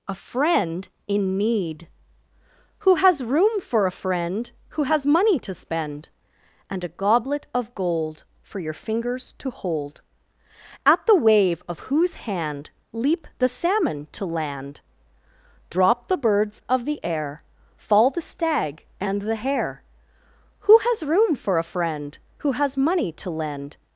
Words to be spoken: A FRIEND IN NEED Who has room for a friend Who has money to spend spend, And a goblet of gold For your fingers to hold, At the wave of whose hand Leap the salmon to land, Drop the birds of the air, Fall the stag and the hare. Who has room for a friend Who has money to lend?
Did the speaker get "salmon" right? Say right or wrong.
right